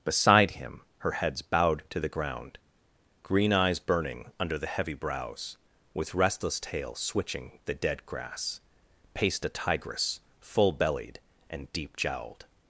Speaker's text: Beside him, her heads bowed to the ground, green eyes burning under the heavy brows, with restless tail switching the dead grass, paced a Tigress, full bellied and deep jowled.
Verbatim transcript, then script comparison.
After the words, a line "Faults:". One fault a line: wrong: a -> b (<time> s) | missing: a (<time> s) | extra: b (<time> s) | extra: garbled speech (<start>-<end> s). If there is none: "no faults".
Beside him, her heads bowed to the ground, green eyes burning under the heavy brows, with restless tail switching the dead grass, paced a Tigress, full bellied and deep jowled.
Faults:
no faults